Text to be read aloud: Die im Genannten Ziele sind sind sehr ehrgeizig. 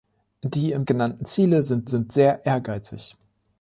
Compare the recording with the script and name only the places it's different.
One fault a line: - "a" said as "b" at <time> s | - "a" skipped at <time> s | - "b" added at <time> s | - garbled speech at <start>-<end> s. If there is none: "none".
none